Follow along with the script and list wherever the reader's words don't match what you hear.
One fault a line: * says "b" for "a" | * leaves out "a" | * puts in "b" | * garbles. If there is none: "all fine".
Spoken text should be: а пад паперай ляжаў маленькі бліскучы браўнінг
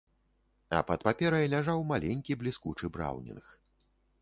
all fine